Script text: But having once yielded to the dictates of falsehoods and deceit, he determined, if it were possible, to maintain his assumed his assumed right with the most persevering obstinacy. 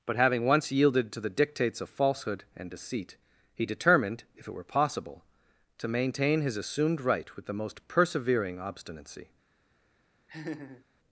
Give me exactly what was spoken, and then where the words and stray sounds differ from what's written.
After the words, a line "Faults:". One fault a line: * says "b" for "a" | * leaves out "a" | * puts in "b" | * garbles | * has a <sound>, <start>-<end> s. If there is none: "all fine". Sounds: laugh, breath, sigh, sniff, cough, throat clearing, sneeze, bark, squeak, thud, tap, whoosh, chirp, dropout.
But having once yielded to the dictates of falsehood and deceit, he determined, if it were possible, to maintain his assumed right with the most persevering obstinacy.
Faults:
* says "falsehood" for "falsehoods"
* leaves out "his assumed"
* has a laugh, 10.3-10.8 s